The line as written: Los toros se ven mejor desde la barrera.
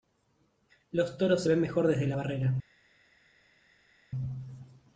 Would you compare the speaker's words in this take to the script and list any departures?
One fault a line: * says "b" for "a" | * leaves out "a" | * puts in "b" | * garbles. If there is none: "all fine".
all fine